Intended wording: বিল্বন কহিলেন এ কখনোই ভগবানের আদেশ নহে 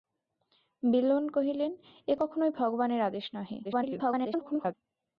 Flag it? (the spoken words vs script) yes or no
yes